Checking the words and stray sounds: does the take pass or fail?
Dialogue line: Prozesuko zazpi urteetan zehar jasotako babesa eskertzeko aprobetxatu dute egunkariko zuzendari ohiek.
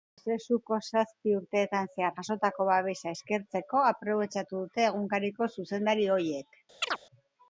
fail